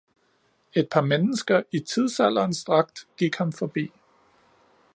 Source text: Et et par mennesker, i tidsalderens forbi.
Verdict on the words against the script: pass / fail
fail